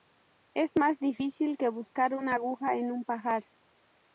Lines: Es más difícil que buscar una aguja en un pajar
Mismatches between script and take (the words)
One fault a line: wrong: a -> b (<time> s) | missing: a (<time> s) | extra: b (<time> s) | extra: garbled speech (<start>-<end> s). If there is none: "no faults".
no faults